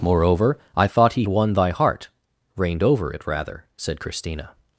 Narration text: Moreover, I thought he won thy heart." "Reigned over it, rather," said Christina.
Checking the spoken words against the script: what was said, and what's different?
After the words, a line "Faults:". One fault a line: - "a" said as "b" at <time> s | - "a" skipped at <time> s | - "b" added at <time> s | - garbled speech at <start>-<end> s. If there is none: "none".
Moreover, I thought he won thy heart." "Reigned over it, rather," said Christina.
Faults:
none